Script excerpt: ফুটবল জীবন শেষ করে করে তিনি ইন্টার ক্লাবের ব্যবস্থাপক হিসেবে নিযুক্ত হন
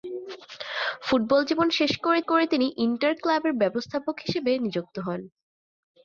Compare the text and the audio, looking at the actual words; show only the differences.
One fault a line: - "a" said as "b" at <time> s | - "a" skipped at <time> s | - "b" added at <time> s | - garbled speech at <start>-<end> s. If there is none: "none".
none